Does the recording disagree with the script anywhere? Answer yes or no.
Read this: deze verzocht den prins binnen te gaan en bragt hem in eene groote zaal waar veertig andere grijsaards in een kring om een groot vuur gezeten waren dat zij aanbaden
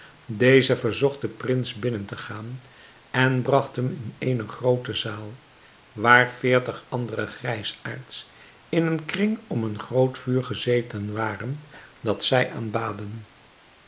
no